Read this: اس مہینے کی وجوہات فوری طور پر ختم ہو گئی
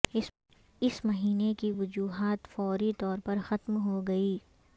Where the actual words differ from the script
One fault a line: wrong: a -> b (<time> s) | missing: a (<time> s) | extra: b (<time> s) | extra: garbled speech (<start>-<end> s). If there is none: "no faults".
no faults